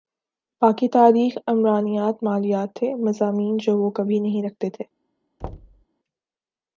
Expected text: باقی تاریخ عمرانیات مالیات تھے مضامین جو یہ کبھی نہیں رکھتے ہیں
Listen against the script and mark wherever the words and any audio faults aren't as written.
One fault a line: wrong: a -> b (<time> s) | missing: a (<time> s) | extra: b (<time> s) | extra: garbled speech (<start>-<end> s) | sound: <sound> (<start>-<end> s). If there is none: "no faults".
wrong: یہ -> وہ (3.8 s)
wrong: ہیں -> تھے (4.7 s)
sound: thud (5.4-5.9 s)